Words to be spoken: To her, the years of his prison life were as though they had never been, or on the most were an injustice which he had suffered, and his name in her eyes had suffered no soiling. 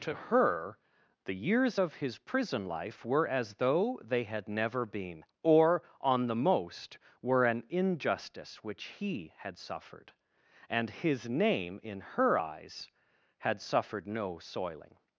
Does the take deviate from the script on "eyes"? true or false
false